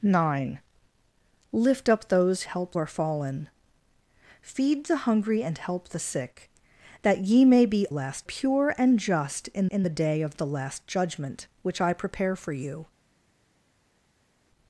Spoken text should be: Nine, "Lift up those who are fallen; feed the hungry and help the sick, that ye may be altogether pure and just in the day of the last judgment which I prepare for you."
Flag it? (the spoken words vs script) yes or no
yes